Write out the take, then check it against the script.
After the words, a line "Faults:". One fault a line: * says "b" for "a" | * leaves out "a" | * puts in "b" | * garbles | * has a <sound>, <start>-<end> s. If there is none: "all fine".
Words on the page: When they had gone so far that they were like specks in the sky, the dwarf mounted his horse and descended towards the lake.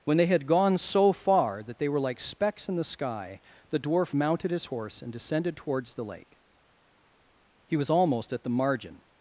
When they had gone so far that they were like specks in the sky, the dwarf mounted his horse and descended towards the lake. He was almost at the margin
Faults:
* puts in "He was almost at the margin"